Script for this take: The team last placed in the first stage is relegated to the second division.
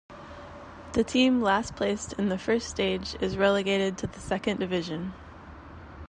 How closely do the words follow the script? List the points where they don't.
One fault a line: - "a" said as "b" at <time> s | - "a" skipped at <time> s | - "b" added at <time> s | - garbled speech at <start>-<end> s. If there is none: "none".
none